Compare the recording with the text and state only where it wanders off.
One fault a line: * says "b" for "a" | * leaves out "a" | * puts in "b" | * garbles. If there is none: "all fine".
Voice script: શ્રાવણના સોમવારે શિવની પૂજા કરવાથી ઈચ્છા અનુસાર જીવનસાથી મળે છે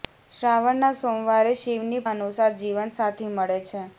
* leaves out "પૂજા કરવાથી ઈચ્છા"